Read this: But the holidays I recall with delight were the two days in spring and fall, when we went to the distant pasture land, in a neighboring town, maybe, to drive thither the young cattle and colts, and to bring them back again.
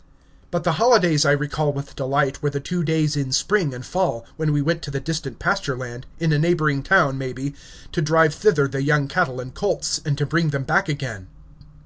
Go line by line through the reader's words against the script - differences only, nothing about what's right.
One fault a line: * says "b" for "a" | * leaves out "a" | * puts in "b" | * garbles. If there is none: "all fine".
all fine